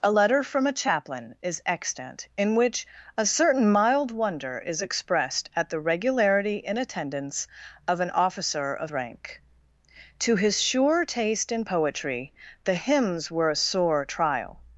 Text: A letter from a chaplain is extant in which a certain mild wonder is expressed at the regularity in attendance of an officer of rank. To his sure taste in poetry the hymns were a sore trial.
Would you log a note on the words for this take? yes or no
no